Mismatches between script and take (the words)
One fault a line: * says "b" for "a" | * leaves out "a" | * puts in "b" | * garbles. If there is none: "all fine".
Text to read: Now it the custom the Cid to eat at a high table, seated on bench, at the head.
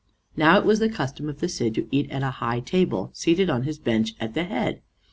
* puts in "was"
* puts in "of"
* puts in "his"